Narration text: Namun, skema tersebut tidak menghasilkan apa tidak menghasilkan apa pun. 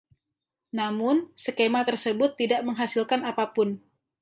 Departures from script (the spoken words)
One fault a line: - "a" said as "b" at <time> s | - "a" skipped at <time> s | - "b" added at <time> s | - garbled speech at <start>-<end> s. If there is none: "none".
- "tidak menghasilkan apa" skipped at 3.5 s